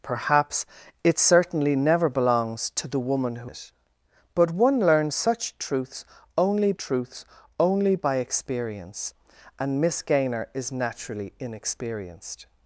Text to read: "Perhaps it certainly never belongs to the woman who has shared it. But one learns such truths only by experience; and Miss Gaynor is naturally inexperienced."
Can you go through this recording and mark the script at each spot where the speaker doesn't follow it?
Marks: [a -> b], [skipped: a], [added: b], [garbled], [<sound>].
"Perhaps it certainly never belongs to the woman who [skipped: has shared] it. But one learns such truths only [added: truths only] by experience; and Miss Gaynor is naturally inexperienced."